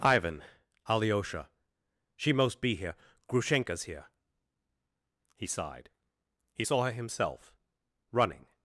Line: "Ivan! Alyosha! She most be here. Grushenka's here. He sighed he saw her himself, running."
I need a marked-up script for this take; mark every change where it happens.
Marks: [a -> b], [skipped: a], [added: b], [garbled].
"Ivan! Alyosha! She most be here. Grushenka's here. He sighed he saw her himself, running."